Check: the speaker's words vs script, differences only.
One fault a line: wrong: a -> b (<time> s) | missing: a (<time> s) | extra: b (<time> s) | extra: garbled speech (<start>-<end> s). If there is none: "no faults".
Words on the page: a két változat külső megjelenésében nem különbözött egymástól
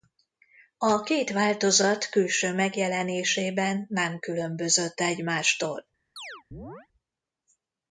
no faults